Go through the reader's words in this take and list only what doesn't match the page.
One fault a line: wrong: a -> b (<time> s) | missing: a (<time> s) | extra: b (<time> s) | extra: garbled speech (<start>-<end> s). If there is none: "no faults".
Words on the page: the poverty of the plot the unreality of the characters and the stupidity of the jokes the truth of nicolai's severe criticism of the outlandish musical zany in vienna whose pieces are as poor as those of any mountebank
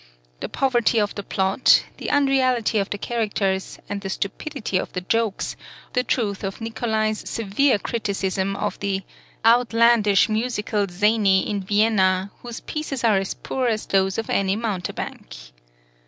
no faults